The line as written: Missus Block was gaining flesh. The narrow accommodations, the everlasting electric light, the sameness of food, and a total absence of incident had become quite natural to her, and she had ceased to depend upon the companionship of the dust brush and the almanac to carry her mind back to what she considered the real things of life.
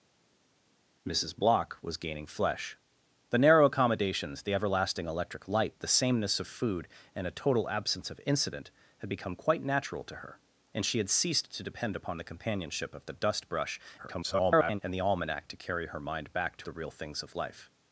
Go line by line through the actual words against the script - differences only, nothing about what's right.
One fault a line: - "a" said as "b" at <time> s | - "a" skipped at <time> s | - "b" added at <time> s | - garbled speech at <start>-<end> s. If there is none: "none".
- garbled speech at 14.0-14.8 s
- "what she considered" skipped at 16.7 s